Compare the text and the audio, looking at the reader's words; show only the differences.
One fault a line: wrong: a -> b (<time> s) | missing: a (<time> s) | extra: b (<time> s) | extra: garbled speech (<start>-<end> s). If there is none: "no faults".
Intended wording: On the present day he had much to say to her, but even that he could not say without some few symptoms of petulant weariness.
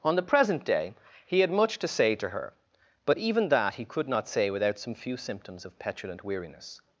no faults